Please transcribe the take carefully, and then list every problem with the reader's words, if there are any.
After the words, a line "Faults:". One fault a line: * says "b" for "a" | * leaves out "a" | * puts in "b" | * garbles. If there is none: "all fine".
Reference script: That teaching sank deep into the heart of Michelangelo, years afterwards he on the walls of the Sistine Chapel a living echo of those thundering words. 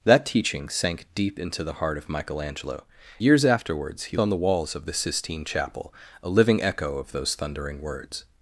That teaching sank deep into the heart of Michelangelo, years afterwards he on the walls of the Sistine Chapel a living echo of those thundering words.
Faults:
all fine